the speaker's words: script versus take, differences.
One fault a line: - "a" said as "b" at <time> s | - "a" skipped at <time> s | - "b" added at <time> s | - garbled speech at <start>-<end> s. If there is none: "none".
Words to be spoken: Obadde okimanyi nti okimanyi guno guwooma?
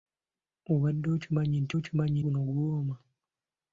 none